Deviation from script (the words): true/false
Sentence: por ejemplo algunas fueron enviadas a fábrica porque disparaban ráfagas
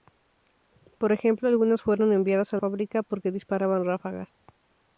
false